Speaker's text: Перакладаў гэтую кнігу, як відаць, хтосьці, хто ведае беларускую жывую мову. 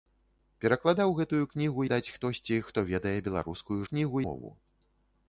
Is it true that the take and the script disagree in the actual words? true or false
true